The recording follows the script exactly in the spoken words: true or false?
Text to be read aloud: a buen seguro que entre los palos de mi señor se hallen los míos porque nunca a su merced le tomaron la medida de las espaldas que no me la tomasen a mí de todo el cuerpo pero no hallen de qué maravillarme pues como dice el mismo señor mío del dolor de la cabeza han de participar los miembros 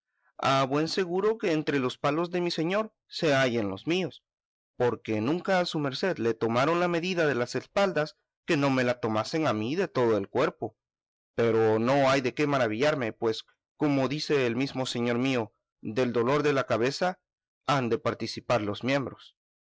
false